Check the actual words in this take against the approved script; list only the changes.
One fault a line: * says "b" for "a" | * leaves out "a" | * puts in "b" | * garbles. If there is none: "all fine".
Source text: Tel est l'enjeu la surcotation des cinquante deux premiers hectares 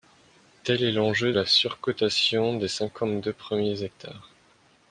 all fine